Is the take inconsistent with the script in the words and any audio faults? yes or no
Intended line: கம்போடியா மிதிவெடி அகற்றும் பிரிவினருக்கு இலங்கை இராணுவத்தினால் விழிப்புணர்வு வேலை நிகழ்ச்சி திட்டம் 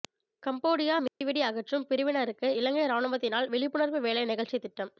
yes